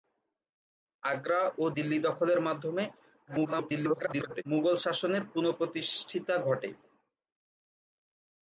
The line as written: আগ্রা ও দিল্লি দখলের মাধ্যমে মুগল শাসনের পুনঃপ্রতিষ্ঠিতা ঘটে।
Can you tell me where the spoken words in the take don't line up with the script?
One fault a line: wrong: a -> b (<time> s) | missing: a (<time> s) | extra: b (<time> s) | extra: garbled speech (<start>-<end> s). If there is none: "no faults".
extra: garbled speech (3.3-4.4 s)